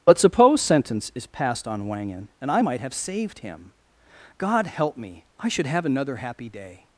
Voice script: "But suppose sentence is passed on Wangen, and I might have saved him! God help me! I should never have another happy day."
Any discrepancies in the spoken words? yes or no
yes